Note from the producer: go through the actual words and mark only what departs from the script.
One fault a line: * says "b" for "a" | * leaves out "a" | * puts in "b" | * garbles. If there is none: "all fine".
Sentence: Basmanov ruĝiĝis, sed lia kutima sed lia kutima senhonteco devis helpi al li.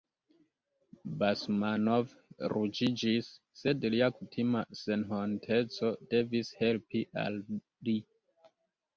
* leaves out "sed lia kutima"